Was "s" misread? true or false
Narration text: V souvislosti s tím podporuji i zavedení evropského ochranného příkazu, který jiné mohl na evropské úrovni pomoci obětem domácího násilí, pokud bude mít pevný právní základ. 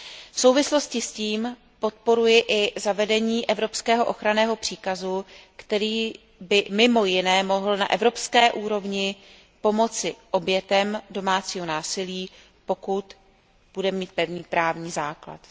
false